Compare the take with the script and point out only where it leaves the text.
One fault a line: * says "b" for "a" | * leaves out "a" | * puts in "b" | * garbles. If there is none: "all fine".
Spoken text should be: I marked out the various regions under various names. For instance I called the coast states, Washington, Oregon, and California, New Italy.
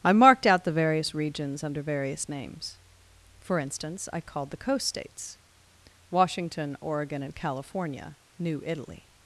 all fine